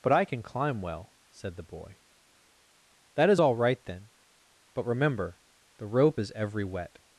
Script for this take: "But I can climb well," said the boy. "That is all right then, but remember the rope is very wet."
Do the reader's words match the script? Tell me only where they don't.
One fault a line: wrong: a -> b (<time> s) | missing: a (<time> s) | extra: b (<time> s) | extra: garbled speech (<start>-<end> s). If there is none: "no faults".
wrong: very -> every (6.3 s)